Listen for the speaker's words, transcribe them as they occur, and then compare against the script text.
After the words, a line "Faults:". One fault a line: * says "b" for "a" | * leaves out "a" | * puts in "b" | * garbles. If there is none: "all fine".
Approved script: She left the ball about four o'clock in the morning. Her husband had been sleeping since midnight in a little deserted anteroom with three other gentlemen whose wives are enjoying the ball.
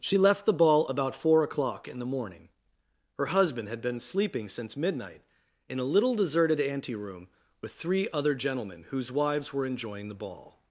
She left the ball about four o'clock in the morning. Her husband had been sleeping since midnight in a little deserted anteroom with three other gentlemen whose wives were enjoying the ball.
Faults:
* says "were" for "are"